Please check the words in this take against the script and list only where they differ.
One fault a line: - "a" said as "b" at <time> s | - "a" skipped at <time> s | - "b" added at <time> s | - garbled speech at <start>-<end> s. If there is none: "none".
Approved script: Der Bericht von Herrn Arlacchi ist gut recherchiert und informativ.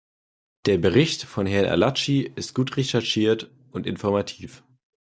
none